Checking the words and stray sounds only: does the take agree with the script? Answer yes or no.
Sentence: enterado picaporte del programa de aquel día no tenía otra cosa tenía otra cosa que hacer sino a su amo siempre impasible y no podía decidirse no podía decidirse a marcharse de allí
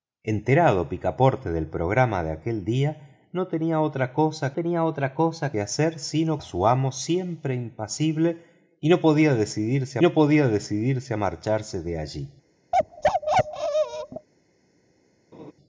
no